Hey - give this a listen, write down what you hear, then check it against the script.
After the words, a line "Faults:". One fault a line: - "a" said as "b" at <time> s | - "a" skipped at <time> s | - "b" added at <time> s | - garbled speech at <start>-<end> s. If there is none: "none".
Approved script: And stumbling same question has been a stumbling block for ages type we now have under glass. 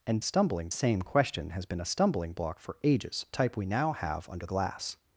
And stumbling same question has been a stumbling block for ages type we now have under glass.
Faults:
none